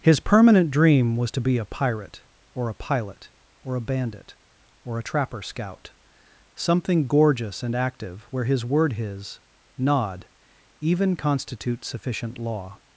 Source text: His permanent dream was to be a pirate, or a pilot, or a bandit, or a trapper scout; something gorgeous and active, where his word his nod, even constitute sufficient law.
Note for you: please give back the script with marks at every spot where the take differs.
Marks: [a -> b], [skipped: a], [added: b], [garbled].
His permanent dream was to be a pirate, or a pilot, or a bandit, or a trapper scout; something gorgeous and active, where his word his nod, even constitute sufficient law.